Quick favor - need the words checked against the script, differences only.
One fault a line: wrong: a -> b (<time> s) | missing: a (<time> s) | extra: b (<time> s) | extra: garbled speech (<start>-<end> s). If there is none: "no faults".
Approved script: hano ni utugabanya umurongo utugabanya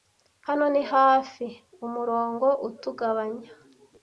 wrong: utugabanya -> hafi (0.9 s)